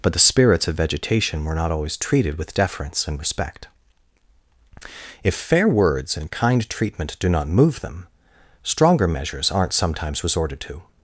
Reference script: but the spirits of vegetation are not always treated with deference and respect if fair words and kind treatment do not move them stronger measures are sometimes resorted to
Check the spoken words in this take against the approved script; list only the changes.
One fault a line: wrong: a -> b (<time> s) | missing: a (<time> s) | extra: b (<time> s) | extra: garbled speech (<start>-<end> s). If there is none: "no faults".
wrong: are -> were (1.4 s)
wrong: are -> aren't (9.5 s)